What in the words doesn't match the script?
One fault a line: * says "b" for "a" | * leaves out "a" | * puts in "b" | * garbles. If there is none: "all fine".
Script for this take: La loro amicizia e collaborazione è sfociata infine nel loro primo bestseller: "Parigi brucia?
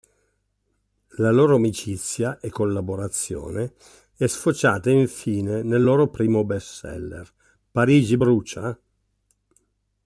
all fine